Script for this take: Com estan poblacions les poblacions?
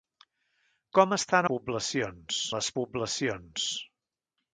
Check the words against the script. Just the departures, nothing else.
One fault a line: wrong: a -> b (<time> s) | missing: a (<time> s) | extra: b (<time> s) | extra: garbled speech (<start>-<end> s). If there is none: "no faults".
no faults